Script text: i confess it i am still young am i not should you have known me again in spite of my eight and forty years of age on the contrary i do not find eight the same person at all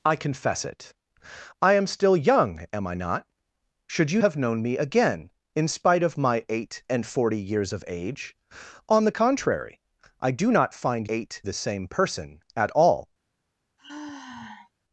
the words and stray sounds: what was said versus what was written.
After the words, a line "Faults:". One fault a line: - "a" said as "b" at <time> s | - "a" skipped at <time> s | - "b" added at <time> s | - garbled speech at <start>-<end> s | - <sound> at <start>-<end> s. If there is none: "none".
i confess it i am still young am i not should you have known me again in spite of my eight and forty years of age on the contrary i do not find eight the same person at all
Faults:
- sigh at 13.8-14.7 s